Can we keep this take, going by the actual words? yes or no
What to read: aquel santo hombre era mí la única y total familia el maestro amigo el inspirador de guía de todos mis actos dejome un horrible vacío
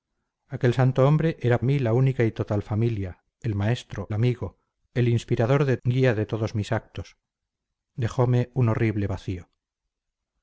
yes